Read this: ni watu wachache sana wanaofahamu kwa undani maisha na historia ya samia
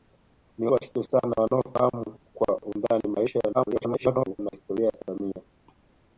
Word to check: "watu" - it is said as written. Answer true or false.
false